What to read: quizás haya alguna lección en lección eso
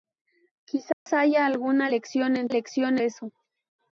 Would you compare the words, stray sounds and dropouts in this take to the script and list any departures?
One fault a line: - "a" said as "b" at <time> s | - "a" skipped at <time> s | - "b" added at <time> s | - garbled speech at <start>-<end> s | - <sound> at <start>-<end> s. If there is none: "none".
- dropout at 0.9-1.1 s